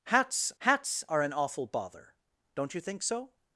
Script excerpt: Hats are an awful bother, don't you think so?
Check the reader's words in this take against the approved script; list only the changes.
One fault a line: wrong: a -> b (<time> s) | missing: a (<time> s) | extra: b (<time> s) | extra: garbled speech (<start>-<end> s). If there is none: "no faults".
extra: hats (0.6 s)